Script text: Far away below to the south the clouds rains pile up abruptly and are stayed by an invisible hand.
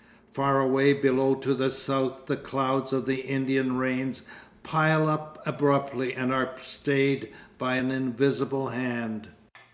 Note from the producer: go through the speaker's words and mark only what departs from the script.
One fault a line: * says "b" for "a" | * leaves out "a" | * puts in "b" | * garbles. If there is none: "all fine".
* puts in "of the Indian"